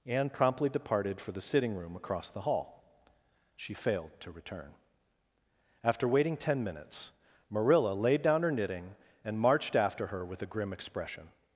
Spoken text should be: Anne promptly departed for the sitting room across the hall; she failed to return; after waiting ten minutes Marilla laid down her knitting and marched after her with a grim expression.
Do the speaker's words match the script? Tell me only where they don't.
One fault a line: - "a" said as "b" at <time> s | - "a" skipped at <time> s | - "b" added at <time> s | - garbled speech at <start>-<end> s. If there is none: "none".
none